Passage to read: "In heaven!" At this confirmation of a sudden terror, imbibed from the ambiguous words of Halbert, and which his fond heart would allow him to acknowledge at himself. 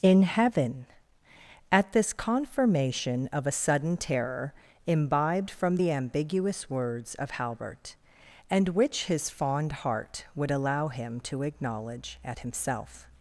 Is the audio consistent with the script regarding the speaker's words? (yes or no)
yes